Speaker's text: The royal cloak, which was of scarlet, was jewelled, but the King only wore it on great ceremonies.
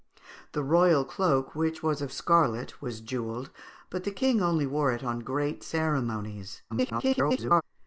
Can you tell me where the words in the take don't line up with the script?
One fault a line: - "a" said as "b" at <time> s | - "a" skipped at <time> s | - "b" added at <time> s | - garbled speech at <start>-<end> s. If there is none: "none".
- garbled speech at 6.7-7.6 s